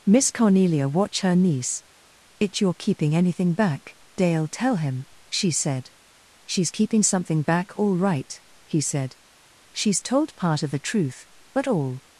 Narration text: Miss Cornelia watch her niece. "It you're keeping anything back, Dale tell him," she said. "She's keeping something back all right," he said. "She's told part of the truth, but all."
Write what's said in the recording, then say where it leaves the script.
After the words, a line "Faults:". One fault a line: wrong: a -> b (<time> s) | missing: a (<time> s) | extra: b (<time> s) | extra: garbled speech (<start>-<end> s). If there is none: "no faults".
Miss Cornelia watch her niece. "It you're keeping anything back, Dale tell him," she said. "She's keeping something back all right," he said. "She's told part of the truth, but all."
Faults:
no faults